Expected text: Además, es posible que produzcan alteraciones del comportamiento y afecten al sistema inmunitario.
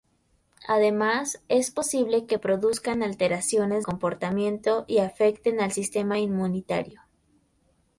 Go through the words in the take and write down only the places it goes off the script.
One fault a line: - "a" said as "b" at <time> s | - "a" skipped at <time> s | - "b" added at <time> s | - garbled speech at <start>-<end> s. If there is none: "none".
- "del" skipped at 3.9 s